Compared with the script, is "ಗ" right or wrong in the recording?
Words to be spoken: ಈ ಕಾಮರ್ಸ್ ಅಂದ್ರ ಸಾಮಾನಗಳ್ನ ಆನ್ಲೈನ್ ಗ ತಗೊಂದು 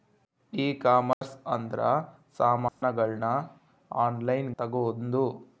wrong